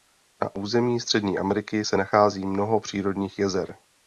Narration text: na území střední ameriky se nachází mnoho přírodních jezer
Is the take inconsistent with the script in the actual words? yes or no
no